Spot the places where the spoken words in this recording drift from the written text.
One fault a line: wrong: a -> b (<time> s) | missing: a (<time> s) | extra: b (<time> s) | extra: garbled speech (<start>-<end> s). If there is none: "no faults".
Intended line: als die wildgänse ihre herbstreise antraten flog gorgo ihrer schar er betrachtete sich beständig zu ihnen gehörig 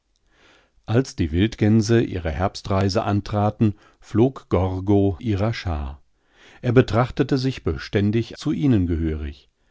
no faults